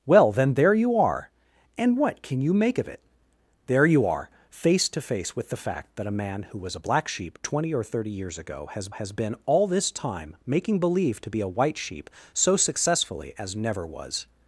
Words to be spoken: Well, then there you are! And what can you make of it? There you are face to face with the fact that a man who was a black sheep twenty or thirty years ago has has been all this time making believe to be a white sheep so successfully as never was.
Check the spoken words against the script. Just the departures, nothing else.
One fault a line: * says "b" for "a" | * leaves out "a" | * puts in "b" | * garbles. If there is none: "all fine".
all fine